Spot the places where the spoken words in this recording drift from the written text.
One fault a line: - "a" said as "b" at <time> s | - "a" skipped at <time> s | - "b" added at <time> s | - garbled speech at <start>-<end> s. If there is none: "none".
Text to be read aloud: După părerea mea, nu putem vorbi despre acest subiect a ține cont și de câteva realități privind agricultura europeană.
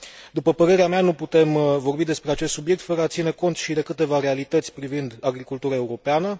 - "fără" added at 2.8 s